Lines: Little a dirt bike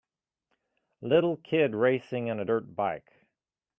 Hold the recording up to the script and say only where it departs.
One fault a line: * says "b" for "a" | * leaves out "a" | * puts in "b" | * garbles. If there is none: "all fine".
* puts in "kid racing in"